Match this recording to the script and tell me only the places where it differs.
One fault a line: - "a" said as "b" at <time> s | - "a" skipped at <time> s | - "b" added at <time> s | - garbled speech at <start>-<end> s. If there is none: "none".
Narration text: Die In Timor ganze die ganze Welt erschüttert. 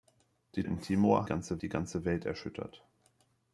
none